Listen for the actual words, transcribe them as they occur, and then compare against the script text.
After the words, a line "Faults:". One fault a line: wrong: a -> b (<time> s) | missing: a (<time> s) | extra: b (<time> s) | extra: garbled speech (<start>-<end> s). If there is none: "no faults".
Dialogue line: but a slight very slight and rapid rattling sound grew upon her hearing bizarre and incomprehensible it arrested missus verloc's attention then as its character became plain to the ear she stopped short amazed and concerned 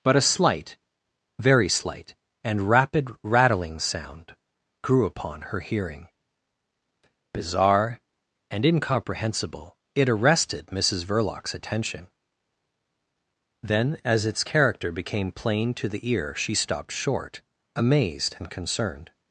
but a slight very slight and rapid rattling sound grew upon her hearing bizarre and incomprehensible it arrested missus verloc's attention then as its character became plain to the ear she stopped short amazed and concerned
Faults:
no faults